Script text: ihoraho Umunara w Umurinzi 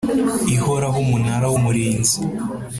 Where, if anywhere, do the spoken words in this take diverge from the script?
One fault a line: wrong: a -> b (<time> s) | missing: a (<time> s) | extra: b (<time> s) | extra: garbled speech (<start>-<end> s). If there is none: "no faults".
no faults